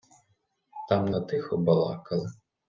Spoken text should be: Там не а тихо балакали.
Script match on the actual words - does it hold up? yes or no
yes